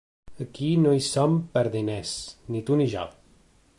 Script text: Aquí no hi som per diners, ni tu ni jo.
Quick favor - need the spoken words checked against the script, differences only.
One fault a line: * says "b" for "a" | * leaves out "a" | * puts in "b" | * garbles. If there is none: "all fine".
all fine